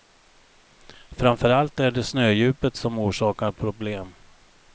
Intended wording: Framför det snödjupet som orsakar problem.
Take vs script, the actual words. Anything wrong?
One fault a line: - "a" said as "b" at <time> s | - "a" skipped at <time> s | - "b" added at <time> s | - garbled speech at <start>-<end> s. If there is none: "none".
- "allt är" added at 1.5 s